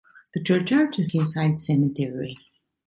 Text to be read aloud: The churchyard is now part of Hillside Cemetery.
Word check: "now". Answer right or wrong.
wrong